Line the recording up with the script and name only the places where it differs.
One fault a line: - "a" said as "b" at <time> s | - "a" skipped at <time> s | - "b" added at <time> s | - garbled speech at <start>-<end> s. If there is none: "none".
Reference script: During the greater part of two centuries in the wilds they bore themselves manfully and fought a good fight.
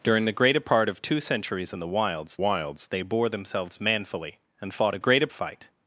- "wilds" added at 2.4 s
- "good" said as "greater" at 5.0 s